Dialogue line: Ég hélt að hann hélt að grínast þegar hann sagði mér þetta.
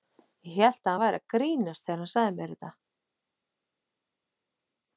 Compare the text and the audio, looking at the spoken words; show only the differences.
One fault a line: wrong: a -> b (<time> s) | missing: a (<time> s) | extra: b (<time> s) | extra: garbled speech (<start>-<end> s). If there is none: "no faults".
wrong: hélt -> væri (1.0 s)